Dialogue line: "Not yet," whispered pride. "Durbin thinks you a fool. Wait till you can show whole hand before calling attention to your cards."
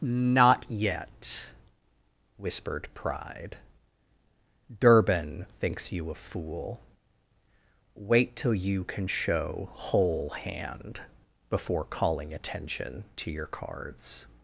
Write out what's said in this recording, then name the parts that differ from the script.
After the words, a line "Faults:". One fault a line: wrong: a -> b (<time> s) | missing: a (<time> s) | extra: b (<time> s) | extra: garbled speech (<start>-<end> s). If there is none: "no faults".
"Not yet," whispered pride. "Durbin thinks you a fool. Wait till you can show whole hand before calling attention to your cards."
Faults:
no faults